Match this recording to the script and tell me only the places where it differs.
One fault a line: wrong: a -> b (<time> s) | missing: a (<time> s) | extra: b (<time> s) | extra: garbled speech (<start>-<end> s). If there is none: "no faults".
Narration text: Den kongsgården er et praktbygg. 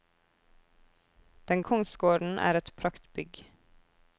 no faults